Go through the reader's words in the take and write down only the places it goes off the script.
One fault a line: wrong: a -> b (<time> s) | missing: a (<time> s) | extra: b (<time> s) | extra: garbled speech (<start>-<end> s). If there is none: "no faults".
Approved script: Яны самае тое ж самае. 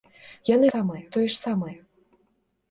no faults